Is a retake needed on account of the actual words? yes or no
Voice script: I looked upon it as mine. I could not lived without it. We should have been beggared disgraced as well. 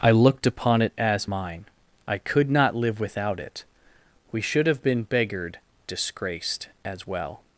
yes